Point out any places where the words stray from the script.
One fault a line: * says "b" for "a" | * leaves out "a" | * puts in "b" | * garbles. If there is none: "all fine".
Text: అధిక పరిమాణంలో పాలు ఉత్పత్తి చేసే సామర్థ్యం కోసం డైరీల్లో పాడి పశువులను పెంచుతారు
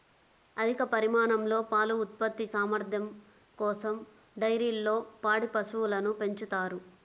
* leaves out "చేసే"